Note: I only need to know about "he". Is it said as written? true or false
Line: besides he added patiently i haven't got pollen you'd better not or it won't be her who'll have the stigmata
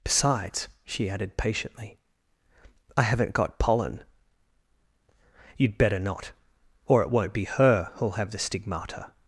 false